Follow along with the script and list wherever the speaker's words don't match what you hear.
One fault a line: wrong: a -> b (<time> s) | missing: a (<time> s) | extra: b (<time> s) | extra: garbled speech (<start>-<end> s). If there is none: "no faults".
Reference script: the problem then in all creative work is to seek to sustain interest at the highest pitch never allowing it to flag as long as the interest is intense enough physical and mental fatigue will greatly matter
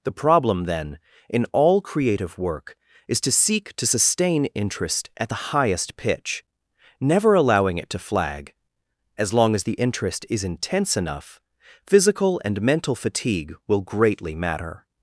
no faults